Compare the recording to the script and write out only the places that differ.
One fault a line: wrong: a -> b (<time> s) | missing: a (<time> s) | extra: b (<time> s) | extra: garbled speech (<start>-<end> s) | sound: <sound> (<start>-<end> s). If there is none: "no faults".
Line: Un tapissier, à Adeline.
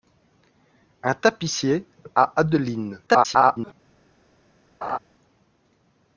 extra: garbled speech (3.1-3.7 s)
sound: laugh (4.8-5.0 s)